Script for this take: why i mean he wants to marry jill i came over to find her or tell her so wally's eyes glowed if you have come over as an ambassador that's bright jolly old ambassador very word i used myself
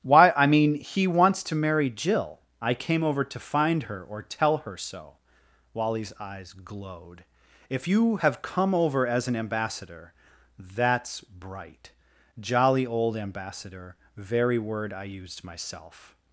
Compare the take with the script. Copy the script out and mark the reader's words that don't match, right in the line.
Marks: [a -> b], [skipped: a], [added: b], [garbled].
why i mean he wants to marry jill i came over to find her or tell her so wally's eyes glowed if you have come over as an ambassador that's bright jolly old ambassador very word i used myself